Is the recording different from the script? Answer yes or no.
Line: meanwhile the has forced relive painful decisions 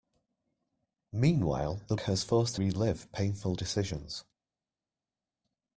no